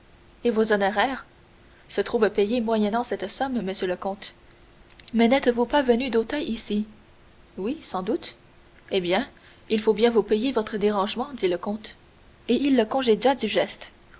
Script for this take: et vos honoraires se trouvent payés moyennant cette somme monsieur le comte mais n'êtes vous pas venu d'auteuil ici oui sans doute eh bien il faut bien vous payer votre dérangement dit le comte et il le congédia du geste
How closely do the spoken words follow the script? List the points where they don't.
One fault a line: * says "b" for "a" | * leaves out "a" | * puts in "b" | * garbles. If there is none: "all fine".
all fine